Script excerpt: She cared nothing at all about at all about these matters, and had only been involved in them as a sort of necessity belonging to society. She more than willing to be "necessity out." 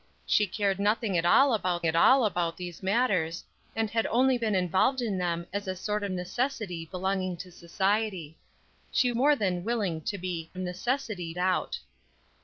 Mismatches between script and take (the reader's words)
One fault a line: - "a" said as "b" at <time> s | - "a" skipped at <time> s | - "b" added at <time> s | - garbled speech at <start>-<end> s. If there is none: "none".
none